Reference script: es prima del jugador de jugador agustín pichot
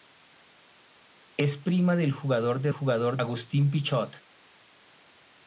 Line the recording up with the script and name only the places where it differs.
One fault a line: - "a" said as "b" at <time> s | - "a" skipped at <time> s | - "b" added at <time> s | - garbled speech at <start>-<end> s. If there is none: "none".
none